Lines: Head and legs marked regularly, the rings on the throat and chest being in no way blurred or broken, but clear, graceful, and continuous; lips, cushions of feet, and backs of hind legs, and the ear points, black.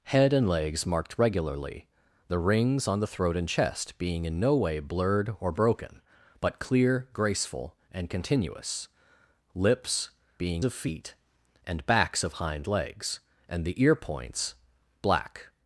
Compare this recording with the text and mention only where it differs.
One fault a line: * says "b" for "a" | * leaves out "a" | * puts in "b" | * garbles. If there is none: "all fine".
* says "being" for "cushions"